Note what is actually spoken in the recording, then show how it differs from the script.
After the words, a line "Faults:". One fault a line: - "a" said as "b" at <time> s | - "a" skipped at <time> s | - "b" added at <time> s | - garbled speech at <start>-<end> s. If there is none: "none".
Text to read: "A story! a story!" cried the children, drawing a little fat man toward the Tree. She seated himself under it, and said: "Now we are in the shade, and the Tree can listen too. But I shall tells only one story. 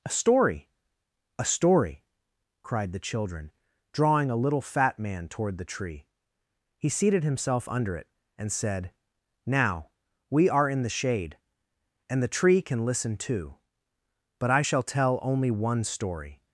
"A story! a story!" cried the children, drawing a little fat man toward the Tree. He seated himself under it, and said: "Now we are in the shade, and the Tree can listen too. But I shall tell only one story.
Faults:
- "She" said as "He" at 6.8 s
- "tells" said as "tell" at 14.8 s